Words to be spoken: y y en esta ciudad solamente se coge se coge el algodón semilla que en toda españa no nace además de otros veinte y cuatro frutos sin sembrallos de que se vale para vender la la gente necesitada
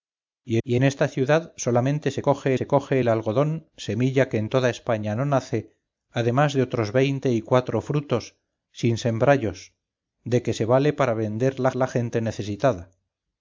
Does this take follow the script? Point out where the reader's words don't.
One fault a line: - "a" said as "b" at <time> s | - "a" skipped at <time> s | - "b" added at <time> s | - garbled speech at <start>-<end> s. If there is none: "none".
none